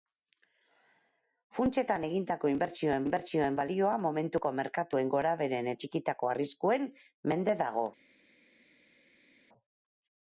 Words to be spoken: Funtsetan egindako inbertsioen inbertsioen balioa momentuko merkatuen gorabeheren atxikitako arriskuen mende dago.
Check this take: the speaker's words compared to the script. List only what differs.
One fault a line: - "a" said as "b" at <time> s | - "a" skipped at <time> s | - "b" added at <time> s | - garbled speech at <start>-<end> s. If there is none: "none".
none